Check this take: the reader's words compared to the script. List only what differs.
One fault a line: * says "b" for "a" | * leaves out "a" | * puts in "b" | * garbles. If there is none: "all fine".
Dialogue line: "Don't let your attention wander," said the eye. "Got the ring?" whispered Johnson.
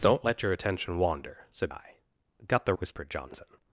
* leaves out "the"
* leaves out "ring"